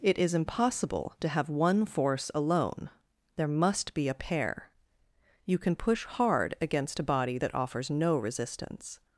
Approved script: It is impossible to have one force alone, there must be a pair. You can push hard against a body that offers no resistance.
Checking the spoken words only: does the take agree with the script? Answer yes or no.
yes